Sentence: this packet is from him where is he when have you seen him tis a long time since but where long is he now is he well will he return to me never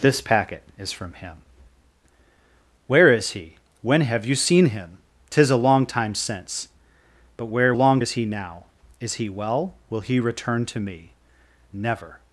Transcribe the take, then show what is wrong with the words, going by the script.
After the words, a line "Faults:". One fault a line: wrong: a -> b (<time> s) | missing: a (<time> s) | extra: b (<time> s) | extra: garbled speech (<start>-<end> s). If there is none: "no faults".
this packet is from him where is he when have you seen him tis a long time since but where long is he now is he well will he return to me never
Faults:
no faults